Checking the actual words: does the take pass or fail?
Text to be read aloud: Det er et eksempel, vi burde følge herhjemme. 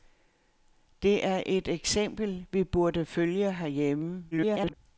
fail